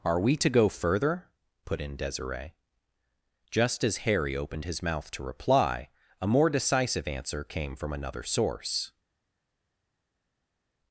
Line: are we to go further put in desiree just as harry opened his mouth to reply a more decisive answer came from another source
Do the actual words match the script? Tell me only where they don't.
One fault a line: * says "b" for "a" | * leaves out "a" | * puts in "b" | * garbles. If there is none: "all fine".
all fine